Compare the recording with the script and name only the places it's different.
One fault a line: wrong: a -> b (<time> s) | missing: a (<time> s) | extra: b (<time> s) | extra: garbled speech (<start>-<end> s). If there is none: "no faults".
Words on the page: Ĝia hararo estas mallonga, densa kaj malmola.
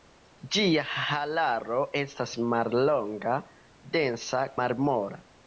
missing: kaj (4.4 s)